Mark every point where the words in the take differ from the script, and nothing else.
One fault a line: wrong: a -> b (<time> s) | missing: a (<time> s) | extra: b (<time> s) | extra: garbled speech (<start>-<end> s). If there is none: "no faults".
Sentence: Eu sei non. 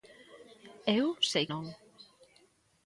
no faults